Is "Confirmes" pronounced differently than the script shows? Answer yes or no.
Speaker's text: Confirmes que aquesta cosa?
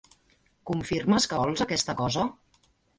no